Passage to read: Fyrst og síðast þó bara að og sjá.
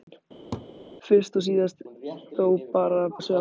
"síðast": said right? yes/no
yes